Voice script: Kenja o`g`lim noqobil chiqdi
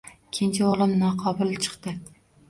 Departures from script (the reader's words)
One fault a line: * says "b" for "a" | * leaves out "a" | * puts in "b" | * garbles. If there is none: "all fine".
all fine